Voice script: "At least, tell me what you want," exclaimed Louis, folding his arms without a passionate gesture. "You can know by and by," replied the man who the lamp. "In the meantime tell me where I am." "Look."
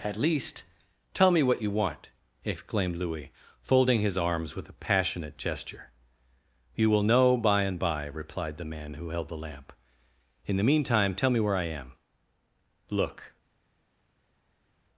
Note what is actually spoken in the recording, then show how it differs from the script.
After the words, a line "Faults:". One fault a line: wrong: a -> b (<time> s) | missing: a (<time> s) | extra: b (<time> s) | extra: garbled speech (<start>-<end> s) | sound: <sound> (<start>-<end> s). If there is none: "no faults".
"At least, tell me what you want," exclaimed Louis, folding his arms with a passionate gesture. "You will know by and by," replied the man who held the lamp. "In the meantime tell me where I am." "Look."
Faults:
wrong: without -> with (4.5 s)
wrong: can -> will (6.9 s)
extra: held (9.1 s)